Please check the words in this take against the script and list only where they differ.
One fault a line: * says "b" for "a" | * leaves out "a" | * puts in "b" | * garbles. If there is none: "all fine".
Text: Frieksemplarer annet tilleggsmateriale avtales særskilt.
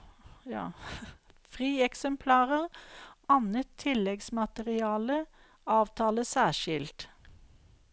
all fine